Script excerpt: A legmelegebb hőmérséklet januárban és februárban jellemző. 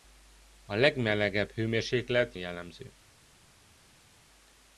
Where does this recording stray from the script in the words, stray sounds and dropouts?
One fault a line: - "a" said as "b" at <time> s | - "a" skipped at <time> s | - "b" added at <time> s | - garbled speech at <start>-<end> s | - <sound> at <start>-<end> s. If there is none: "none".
- "januárban és februárban" skipped at 2.3 s